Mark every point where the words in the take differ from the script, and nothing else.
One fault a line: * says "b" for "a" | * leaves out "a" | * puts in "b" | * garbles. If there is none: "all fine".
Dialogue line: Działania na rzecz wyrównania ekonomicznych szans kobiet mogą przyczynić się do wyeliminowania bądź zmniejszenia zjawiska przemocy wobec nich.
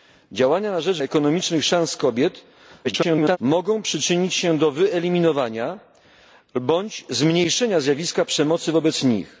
* leaves out "wyrównania"
* garbles